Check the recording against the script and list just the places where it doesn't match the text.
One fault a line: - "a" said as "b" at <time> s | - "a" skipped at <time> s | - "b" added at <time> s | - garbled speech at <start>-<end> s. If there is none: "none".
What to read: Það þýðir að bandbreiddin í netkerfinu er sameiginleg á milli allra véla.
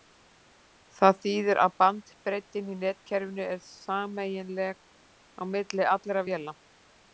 none